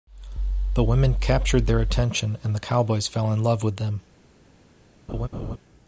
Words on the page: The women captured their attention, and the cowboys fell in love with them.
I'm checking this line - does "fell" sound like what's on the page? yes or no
yes